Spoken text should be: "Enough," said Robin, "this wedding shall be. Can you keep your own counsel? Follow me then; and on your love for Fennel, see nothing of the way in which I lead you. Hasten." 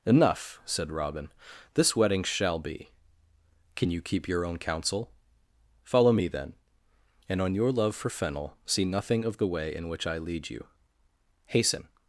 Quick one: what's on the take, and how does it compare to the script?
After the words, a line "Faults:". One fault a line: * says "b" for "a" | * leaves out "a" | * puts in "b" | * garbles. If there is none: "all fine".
"Enough," said Robin, "this wedding shall be. Can you keep your own counsel? Follow me then; and on your love for Fennel, see nothing of the way in which I lead you. Hasten."
Faults:
all fine